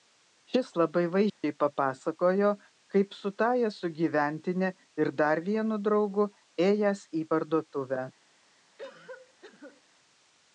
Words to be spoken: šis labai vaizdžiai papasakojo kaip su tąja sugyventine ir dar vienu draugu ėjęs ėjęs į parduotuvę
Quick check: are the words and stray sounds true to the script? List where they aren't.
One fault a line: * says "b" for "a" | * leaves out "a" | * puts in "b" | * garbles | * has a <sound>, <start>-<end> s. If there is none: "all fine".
* has a dropout, 1.3-1.4 s
* leaves out "ėjęs"
* has a cough, 8.8-9.8 s